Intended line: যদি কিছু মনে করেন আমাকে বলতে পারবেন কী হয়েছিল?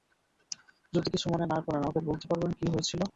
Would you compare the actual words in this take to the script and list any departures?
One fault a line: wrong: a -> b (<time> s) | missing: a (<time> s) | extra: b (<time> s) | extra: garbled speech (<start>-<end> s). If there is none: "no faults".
extra: না (1.4 s)